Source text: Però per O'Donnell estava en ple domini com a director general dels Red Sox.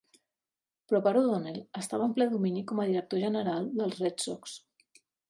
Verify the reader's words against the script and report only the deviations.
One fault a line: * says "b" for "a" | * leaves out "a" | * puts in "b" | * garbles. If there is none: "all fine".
all fine